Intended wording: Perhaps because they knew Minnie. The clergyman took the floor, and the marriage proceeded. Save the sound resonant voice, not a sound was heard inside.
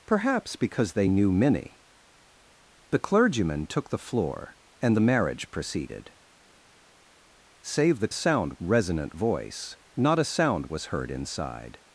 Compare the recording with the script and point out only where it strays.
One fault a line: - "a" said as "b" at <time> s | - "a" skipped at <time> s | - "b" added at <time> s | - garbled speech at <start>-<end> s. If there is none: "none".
none